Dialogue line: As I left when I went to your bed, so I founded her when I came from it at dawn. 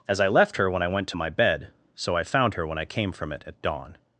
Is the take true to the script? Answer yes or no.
no